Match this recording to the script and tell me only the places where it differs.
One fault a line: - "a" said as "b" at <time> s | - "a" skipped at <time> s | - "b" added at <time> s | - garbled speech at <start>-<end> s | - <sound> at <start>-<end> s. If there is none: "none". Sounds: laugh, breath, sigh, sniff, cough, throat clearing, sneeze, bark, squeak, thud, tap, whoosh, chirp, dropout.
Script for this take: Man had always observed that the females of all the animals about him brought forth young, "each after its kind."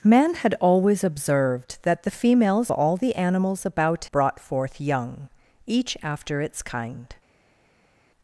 - "of" skipped at 2.7 s
- "him" skipped at 4.1 s